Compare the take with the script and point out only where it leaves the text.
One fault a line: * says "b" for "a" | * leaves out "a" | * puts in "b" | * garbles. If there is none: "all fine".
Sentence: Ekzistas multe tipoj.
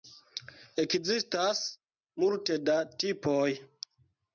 * puts in "da"